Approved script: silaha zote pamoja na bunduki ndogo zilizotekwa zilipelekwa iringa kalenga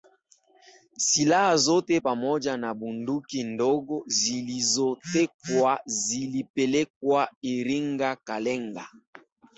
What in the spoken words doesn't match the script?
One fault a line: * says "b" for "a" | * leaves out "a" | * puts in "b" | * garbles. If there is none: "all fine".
all fine